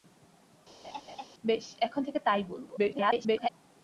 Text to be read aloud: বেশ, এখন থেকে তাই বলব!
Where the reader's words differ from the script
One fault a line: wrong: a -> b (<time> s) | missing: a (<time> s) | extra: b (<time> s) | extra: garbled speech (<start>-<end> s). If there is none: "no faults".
extra: garbled speech (2.8-3.5 s)